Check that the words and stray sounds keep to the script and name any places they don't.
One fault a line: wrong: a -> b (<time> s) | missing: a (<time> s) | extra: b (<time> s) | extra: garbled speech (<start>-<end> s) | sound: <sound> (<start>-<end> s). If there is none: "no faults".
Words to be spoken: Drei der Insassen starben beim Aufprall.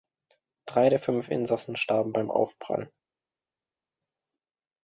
extra: fünf (1.0 s)